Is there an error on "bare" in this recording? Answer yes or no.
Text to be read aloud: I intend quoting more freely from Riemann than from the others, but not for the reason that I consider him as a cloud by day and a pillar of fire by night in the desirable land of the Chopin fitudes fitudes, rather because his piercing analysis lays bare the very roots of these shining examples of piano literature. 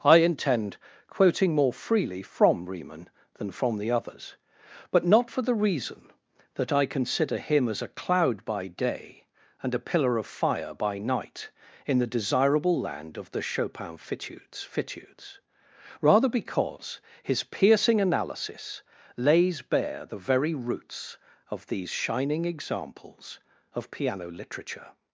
no